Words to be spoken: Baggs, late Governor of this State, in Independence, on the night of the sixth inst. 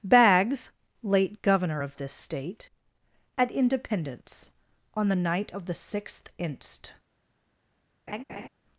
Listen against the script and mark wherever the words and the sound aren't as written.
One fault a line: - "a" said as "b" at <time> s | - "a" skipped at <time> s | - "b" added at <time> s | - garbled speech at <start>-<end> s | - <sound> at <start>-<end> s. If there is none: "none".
- "in" said as "at" at 3.4 s
- laugh at 8.1-8.5 s